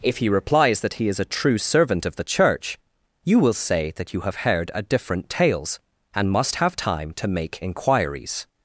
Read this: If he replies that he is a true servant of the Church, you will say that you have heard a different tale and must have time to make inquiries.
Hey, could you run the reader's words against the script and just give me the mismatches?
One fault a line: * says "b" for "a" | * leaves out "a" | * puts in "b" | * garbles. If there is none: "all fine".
* says "tales" for "tale"